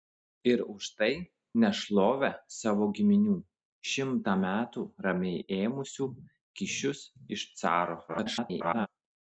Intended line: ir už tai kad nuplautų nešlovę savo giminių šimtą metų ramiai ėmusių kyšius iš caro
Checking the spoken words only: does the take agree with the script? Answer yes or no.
no